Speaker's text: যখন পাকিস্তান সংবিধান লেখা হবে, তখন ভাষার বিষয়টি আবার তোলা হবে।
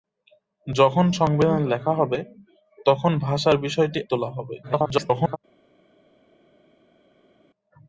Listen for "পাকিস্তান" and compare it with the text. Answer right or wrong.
wrong